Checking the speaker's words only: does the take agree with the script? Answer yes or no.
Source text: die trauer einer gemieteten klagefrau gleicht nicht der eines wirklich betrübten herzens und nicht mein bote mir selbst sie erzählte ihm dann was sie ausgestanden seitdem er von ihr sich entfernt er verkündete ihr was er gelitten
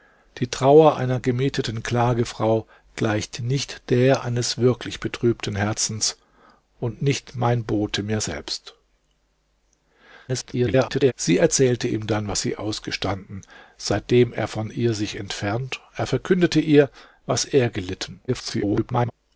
no